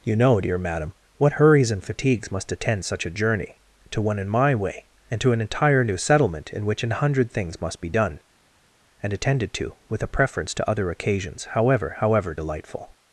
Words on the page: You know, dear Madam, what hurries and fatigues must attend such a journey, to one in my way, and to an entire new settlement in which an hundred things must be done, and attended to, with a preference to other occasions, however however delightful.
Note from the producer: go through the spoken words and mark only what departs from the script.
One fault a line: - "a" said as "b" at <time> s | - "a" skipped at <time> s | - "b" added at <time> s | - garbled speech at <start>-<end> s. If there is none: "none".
none